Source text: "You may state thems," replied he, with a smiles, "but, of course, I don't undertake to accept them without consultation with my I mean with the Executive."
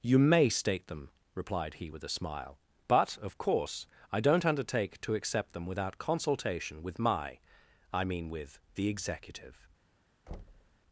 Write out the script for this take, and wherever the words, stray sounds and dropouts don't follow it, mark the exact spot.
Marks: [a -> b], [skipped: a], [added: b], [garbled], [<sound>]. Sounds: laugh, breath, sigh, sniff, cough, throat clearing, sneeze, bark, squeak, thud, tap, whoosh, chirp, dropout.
"You may state [thems," -> them] replied he, with a [smiles, -> smile] "but, of course, I don't undertake to accept them without consultation with my I mean with the Executive." [thud]